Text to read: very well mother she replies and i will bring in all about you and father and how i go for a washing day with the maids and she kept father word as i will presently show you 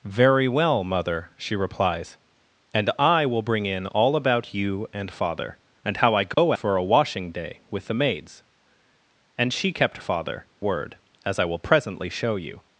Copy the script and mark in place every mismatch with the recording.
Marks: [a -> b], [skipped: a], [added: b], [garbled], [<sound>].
very well mother she replies and i will bring in all about you and father and how i go [dropout] for a washing day with the maids and she kept father word as i will presently show you